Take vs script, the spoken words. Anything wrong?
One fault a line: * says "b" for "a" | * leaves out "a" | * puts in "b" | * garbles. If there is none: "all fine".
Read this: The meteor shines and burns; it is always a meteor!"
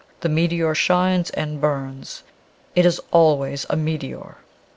all fine